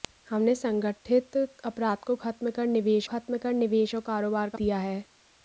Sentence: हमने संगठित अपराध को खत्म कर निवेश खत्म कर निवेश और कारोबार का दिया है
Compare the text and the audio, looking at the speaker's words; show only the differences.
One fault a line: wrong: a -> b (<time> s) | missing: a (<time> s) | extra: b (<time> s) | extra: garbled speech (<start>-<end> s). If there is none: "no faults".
no faults